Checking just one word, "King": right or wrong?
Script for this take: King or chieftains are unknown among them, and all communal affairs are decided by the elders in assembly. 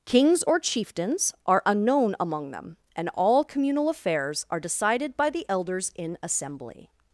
wrong